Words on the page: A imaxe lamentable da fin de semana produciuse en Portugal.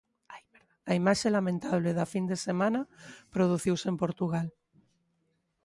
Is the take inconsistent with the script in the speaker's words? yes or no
no